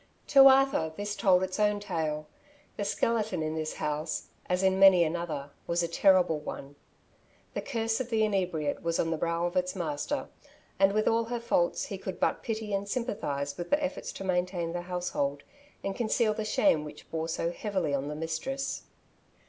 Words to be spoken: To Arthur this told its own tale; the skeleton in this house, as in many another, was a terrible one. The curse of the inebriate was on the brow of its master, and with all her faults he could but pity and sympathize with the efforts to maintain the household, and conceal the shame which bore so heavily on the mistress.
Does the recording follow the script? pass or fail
pass